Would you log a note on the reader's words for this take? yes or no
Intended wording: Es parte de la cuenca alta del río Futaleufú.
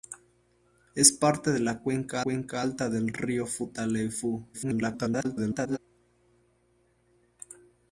yes